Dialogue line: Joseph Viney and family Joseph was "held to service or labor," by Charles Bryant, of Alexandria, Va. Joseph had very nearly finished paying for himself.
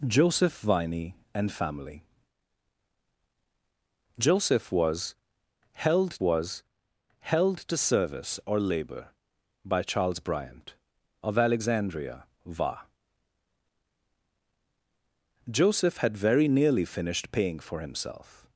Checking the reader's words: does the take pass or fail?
fail